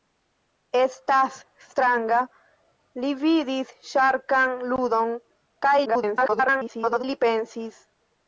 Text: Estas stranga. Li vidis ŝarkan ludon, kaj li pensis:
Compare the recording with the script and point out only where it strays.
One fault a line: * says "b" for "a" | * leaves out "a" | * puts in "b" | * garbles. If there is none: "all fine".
* garbles